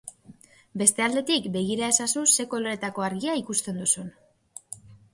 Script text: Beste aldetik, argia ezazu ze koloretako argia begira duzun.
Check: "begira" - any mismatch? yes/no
yes